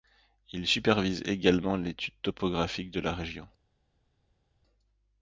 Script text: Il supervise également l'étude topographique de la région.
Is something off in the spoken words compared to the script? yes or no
no